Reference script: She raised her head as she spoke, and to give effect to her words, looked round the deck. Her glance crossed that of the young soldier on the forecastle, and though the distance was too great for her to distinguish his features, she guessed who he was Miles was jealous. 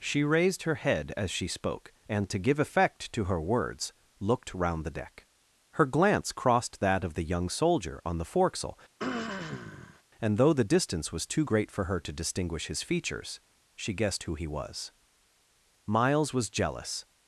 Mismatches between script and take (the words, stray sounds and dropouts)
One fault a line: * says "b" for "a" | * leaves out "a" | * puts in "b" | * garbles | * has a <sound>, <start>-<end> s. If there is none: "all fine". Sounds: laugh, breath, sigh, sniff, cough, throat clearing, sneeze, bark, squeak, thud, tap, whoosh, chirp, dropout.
* has a throat clearing, 9.0-10.0 s